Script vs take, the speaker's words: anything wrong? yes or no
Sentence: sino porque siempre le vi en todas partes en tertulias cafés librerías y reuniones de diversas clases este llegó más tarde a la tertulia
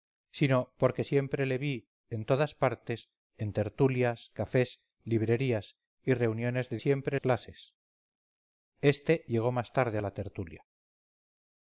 yes